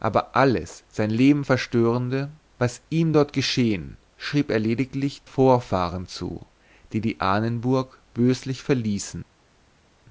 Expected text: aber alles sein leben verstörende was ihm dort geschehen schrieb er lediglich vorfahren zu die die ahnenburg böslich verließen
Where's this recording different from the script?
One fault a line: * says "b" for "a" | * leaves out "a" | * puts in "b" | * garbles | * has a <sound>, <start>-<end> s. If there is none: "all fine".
all fine